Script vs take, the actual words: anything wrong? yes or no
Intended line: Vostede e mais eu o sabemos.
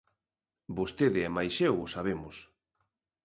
no